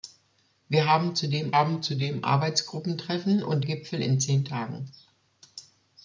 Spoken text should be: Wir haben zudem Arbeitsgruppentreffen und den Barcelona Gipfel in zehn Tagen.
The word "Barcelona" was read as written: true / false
false